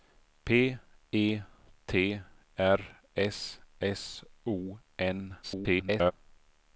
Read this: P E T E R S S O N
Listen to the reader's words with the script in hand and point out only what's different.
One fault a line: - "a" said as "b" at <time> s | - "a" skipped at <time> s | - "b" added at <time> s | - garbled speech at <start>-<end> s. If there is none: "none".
- "E" skipped at 2.2 s
- garbled speech at 5.4-6.1 s